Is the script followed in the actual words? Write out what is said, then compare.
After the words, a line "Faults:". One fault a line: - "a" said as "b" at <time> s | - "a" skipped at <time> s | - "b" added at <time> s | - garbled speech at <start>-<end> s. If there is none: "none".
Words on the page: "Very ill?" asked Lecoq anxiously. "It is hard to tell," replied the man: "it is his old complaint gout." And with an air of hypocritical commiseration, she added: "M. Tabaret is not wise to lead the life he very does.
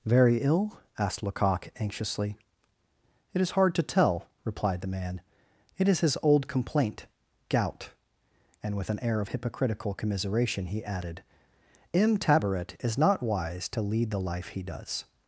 "Very ill?" asked Lecoq anxiously. "It is hard to tell," replied the man: "it is his old complaint gout." And with an air of hypocritical commiseration, he added: "M. Tabaret is not wise to lead the life he does.
Faults:
- "she" said as "he" at 10.7 s
- "very" skipped at 14.6 s